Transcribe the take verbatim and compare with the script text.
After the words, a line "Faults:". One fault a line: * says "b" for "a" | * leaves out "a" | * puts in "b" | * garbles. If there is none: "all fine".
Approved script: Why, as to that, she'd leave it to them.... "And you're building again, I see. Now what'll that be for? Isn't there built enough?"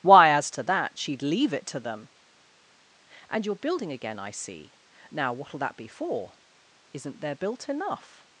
Why, as to that, she'd leave it to them.... "And you're building again, I see. Now what'll that be for? Isn't there built enough?"
Faults:
all fine